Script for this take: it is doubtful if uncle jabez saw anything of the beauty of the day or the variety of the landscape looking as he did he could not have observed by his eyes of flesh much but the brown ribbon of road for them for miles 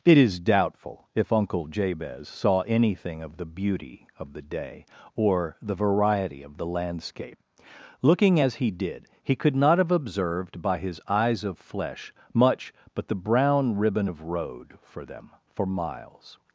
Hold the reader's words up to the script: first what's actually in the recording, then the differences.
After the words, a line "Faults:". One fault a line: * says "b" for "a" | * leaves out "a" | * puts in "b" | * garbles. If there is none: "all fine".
it is doubtful if uncle jabez saw anything of the beauty of the day or the variety of the landscape looking as he did he could not have observed by his eyes of flesh much but the brown ribbon of road for them for miles
Faults:
all fine